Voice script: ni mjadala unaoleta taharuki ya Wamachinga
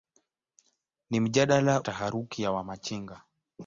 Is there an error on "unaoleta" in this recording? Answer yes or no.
yes